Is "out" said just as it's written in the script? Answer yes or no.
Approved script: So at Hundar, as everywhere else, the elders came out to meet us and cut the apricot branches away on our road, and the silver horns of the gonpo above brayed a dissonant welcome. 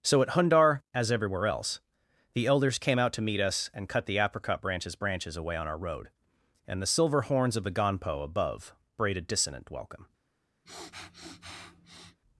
yes